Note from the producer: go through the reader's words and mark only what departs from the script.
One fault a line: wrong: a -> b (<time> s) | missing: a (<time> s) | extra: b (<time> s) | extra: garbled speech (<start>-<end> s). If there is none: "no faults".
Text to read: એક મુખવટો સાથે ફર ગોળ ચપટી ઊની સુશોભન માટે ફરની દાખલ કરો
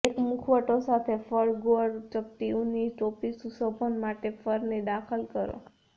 extra: ટોપી (2.9 s)